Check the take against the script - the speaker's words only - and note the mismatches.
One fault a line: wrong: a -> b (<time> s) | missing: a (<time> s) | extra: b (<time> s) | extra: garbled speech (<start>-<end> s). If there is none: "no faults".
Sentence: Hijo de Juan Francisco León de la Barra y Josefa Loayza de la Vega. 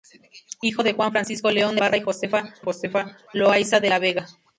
missing: la (1.8 s)
extra: Josefa (2.6 s)